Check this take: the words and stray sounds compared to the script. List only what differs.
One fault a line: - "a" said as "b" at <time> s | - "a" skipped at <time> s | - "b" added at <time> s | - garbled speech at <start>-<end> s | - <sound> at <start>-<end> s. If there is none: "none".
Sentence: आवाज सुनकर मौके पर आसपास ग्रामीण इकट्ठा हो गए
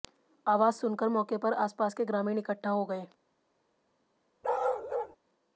- "के" added at 1.9 s
- bark at 4.4-5.2 s